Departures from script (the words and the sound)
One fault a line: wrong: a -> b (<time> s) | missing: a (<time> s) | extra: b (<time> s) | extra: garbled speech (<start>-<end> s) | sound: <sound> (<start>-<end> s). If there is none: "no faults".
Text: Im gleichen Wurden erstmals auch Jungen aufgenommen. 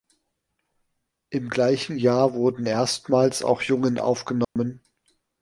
extra: Jahr (2.0 s)
sound: dropout (4.4-4.6 s)